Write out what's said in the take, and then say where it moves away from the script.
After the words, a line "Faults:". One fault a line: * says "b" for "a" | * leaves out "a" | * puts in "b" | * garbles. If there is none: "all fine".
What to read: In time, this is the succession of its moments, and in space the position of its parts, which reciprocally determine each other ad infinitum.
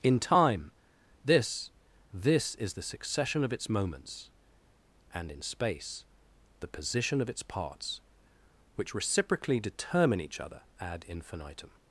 In time, this this is the succession of its moments, and in space the position of its parts, which reciprocally determine each other ad infinitum.
Faults:
* puts in "this"